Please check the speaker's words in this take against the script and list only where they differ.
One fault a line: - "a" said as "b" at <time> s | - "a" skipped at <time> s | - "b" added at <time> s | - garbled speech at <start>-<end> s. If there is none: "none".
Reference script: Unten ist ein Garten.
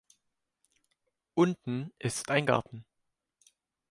none